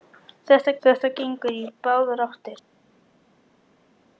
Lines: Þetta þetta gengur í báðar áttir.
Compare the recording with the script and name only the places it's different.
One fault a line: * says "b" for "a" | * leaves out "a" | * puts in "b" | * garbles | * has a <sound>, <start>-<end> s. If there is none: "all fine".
all fine